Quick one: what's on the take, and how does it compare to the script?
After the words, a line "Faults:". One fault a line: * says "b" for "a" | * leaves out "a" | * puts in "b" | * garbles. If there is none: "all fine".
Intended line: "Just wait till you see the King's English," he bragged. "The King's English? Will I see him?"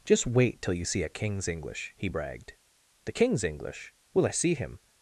"Just wait till you see a King's English," he bragged. "The King's English? Will I see him?"
Faults:
* says "a" for "the"